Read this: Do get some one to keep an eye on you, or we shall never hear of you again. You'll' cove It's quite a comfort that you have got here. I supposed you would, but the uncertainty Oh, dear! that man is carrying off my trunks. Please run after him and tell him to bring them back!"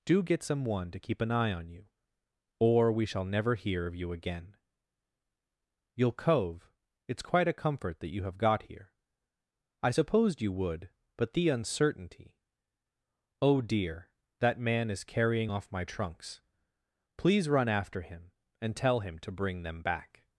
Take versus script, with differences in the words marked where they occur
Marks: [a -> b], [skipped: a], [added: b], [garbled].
Do get some one to keep an eye on you, or we shall never hear of you again. You'll' cove It's quite a comfort that you have got here. I supposed you would, but the uncertainty Oh, dear! that man is carrying off my trunks. Please run after him and tell him to bring them back!"